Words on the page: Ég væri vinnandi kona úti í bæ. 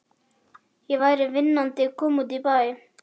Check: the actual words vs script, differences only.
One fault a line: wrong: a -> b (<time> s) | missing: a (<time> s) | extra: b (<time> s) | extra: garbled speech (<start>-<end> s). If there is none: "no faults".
no faults